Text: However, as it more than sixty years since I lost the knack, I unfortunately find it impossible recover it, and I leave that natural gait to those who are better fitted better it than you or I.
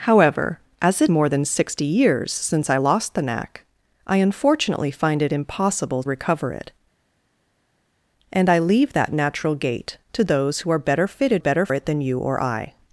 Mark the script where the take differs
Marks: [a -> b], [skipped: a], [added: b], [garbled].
However, as it more than sixty years since I lost the knack, I unfortunately find it impossible recover it, and I leave that natural gait to those who are better fitted better it than you or I.